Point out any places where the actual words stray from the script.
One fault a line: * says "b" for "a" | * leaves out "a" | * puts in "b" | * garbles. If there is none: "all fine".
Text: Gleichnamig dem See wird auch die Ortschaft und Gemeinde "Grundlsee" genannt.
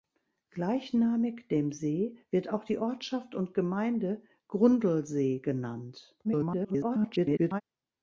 * garbles